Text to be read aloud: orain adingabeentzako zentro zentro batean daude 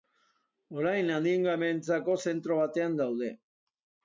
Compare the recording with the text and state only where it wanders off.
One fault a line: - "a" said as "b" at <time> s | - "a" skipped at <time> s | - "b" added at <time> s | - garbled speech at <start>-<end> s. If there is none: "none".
- "zentro" skipped at 2.6 s